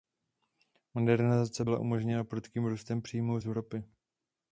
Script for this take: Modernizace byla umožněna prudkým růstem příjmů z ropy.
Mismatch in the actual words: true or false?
false